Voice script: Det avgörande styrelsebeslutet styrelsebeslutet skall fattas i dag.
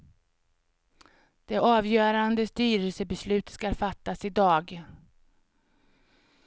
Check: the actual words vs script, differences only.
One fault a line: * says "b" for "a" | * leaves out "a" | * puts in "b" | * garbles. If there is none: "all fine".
* leaves out "styrelsebeslutet"